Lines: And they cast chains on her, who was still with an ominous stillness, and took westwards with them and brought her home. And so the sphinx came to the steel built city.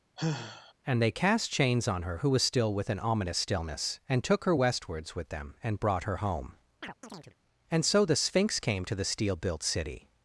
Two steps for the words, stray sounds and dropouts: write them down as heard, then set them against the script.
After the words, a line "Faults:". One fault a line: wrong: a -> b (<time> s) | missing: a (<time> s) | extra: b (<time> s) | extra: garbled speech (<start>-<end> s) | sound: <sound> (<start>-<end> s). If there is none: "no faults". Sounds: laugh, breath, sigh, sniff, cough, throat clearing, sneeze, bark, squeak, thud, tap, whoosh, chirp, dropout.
And they cast chains on her, who was still with an ominous stillness, and took her westwards with them and brought her home. And so the sphinx came to the steel built city.
Faults:
sound: sigh (0.2-0.7 s)
extra: her (4.4 s)
sound: chirp (6.8-7.4 s)